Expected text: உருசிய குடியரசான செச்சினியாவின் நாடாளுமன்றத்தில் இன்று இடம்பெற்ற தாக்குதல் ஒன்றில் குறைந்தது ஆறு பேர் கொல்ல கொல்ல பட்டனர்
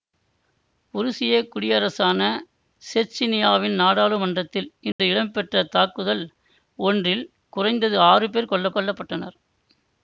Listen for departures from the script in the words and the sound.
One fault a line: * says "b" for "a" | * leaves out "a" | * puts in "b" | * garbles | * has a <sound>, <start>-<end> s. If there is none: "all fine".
* has a dropout, 4.9-5.0 s